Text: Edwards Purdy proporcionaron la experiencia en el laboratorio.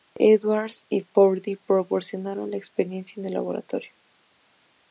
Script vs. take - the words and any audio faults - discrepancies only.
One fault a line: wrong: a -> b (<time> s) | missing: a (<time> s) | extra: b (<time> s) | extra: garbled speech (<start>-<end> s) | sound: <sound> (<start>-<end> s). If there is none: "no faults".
extra: y (0.9 s)